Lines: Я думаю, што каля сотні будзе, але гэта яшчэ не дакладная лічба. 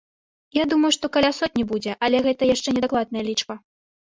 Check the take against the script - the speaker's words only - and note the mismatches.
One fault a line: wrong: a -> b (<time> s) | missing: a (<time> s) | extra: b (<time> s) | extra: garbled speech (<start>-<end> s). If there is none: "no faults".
no faults